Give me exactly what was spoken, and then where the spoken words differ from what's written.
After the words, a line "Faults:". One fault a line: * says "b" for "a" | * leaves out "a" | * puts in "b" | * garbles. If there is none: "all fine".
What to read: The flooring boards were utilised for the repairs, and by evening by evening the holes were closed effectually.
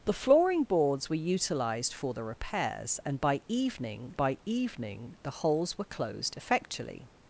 The flooring boards were utilised for the repairs, and by evening by evening the holes were closed effectually.
Faults:
all fine